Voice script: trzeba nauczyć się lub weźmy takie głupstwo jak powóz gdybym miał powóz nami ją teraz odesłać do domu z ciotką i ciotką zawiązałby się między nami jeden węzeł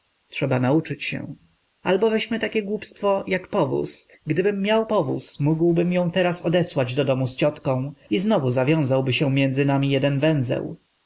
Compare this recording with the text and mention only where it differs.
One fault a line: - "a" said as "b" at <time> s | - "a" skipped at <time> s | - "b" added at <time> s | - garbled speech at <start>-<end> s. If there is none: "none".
- "lub" said as "albo" at 1.8 s
- "nami" said as "mógłbym" at 5.4 s
- "ciotką" said as "znowu" at 8.2 s